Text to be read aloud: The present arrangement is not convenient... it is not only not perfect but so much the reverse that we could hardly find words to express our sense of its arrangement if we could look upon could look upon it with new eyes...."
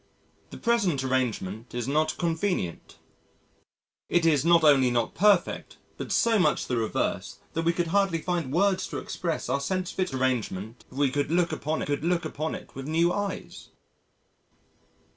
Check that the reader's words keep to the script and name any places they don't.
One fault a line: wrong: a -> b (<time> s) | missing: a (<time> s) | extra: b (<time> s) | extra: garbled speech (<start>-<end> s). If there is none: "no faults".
no faults